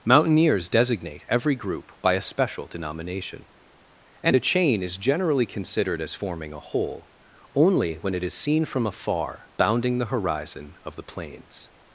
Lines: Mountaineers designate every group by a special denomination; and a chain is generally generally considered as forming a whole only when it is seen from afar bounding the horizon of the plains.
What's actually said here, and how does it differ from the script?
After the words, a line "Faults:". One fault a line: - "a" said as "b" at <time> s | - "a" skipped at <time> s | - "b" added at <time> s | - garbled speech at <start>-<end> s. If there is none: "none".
Mountaineers designate every group by a special denomination; and a chain is generally considered as forming a whole only when it is seen from afar bounding the horizon of the plains.
Faults:
- "generally" skipped at 5.4 s